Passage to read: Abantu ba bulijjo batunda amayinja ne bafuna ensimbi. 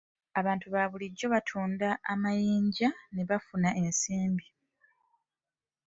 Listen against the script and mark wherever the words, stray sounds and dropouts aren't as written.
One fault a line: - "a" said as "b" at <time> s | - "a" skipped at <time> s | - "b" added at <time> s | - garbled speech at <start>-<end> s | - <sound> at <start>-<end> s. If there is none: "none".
none